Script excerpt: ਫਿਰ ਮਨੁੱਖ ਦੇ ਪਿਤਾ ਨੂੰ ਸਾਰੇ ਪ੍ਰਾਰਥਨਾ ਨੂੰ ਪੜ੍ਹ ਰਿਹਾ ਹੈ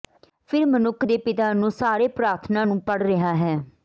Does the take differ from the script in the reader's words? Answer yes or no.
no